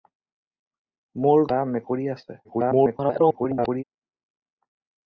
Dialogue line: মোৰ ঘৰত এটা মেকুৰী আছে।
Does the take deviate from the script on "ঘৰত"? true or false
true